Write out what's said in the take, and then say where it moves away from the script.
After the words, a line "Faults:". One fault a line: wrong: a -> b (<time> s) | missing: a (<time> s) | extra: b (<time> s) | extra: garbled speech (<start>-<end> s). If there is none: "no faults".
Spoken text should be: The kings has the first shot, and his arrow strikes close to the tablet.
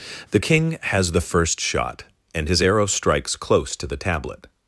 The king has the first shot, and his arrow strikes close to the tablet.
Faults:
wrong: kings -> king (0.4 s)